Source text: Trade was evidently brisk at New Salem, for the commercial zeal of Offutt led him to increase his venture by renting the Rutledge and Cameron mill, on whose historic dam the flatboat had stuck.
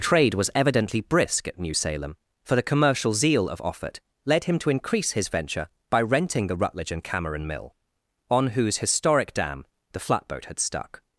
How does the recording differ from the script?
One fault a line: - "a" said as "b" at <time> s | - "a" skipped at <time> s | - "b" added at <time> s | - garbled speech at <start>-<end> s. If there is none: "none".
none